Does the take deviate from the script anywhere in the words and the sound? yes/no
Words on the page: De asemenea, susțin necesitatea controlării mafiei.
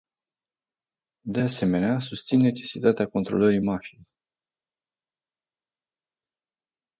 no